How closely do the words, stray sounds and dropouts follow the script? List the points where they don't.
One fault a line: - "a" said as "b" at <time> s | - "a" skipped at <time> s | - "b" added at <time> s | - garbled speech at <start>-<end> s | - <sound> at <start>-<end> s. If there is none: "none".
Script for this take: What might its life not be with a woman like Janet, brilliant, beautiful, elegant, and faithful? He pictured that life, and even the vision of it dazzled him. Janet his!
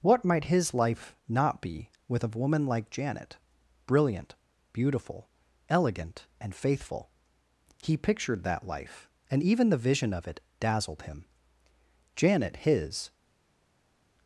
- "its" said as "his" at 0.5 s